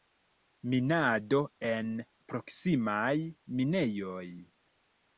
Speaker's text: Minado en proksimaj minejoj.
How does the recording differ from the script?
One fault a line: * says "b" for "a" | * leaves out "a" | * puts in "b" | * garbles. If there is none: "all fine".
all fine